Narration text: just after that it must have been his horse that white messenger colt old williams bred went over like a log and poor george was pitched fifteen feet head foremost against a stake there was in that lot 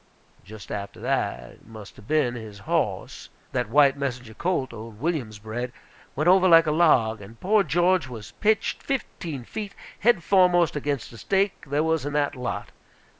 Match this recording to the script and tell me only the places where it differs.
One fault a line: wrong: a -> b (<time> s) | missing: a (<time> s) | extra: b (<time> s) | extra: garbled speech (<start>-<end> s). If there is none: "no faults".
no faults